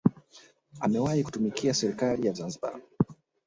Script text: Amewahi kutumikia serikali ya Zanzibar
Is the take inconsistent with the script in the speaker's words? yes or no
no